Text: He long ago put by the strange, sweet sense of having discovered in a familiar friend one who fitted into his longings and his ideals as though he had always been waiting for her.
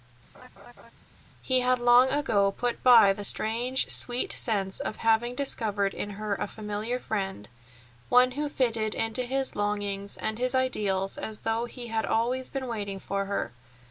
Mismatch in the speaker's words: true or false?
true